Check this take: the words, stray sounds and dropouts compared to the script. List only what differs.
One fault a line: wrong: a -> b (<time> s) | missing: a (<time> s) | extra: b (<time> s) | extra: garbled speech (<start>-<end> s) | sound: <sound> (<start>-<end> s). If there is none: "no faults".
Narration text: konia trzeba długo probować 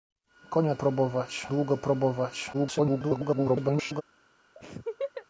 wrong: trzeba -> probować (0.7 s)
extra: garbled speech (2.5-4.0 s)
sound: laugh (4.6-5.3 s)